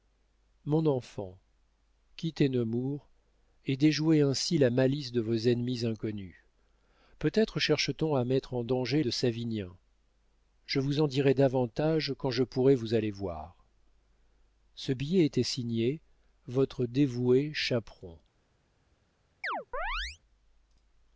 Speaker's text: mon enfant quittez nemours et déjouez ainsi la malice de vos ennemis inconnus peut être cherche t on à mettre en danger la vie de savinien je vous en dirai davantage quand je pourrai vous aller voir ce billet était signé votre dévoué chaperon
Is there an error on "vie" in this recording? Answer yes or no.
yes